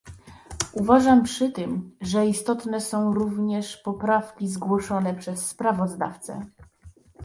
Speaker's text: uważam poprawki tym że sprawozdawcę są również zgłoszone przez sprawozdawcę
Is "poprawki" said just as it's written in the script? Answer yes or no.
no